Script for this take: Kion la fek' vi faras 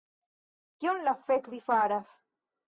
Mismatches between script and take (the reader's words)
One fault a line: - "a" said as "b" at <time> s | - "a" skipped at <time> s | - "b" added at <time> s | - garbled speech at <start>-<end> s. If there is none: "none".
none